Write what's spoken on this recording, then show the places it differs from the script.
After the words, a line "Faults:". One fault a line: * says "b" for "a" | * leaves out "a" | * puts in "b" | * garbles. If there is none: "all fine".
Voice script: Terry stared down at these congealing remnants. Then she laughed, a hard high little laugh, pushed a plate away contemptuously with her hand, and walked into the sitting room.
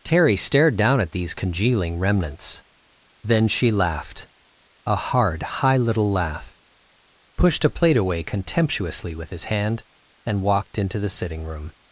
Terry stared down at these congealing remnants. Then she laughed, a hard high little laugh, pushed a plate away contemptuously with his hand, and walked into the sitting room.
Faults:
* says "his" for "her"